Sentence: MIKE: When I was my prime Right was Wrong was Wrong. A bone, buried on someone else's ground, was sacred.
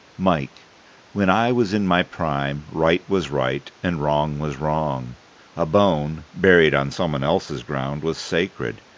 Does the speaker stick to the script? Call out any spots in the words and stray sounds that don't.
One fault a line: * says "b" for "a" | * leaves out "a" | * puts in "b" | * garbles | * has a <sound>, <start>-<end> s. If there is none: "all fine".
* puts in "in"
* puts in "Right and"